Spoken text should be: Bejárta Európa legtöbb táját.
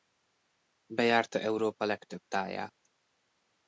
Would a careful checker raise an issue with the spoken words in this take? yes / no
no